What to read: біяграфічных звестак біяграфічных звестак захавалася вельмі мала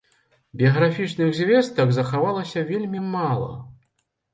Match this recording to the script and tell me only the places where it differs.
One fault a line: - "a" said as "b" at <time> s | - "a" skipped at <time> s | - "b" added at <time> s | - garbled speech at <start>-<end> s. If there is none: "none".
- "біяграфічных звестак" skipped at 1.9 s